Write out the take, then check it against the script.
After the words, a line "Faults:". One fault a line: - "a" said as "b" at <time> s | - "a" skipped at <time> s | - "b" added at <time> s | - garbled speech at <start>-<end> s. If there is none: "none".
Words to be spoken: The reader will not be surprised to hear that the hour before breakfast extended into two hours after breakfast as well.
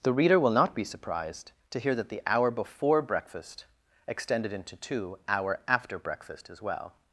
The reader will not be surprised to hear that the hour before breakfast extended into two hour after breakfast as well.
Faults:
- "hours" said as "hour" at 5.3 s